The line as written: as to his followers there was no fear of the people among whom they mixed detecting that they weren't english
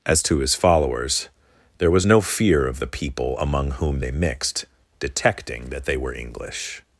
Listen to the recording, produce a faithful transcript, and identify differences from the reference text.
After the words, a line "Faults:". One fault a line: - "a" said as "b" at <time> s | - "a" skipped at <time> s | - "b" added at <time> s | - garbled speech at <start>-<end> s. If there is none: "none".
as to his followers there was no fear of the people among whom they mixed detecting that they were english
Faults:
- "weren't" said as "were" at 6.0 s